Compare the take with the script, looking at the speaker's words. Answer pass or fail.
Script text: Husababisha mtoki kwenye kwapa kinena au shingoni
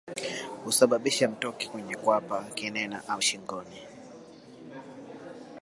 pass